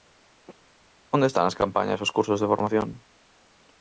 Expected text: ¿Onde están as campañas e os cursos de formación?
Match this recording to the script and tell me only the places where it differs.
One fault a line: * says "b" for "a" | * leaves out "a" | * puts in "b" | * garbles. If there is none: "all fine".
all fine